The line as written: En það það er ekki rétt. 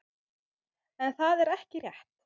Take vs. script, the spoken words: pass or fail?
fail